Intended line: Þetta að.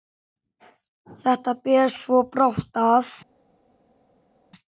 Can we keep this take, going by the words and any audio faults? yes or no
no